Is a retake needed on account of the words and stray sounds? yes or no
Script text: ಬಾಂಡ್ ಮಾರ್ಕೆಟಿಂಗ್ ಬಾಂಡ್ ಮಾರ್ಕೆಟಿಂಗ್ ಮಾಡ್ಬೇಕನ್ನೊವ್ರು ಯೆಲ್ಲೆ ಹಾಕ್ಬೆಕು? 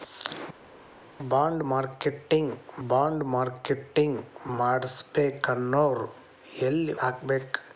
no